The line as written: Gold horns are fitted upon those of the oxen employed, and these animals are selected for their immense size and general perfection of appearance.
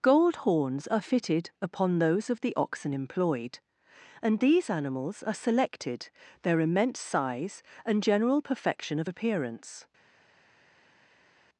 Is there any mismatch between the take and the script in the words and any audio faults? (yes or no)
yes